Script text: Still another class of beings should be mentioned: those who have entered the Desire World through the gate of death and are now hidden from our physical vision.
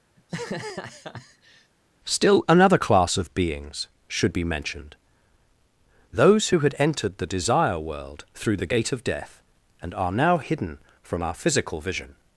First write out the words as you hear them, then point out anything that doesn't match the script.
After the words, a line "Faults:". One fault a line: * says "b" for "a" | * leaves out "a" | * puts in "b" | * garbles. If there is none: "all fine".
Still another class of beings should be mentioned: those who had entered the Desire World through the gate of death and are now hidden from our physical vision.
Faults:
* says "had" for "have"